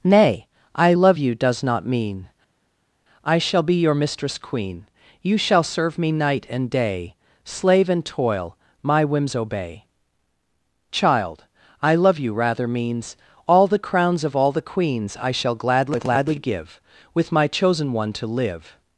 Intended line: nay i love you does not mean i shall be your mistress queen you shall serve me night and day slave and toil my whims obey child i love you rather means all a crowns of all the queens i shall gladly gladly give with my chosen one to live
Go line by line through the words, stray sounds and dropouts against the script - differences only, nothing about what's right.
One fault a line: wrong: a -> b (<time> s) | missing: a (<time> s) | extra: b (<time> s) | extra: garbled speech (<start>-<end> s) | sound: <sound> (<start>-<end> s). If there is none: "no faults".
wrong: a -> the (13.7 s)